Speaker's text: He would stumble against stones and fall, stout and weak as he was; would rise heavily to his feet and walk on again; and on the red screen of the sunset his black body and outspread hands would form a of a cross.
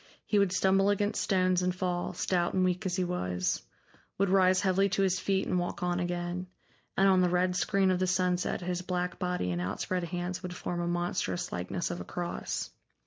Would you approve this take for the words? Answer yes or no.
no